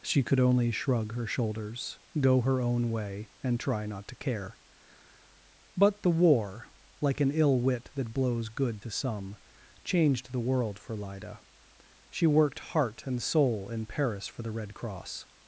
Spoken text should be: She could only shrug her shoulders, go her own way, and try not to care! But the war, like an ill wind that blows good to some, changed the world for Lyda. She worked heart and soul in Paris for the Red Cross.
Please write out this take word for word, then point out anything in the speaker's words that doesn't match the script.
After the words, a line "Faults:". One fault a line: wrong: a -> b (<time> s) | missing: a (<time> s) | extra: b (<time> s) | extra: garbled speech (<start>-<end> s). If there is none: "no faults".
She could only shrug her shoulders, go her own way, and try not to care! But the war, like an ill wit that blows good to some, changed the world for Lyda. She worked heart and soul in Paris for the Red Cross.
Faults:
wrong: wind -> wit (7.6 s)